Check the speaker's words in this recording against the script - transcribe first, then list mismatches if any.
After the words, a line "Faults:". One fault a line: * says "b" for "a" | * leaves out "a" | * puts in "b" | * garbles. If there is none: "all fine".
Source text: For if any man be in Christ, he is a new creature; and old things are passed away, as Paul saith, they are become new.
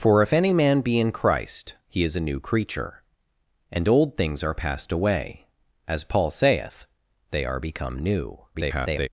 For if any man be in Christ, he is a new creature; and old things are passed away, as Paul saith, they are become new. [garbled]
Faults:
* garbles